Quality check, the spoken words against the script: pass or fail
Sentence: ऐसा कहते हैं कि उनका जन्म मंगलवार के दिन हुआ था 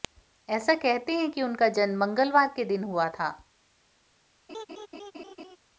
pass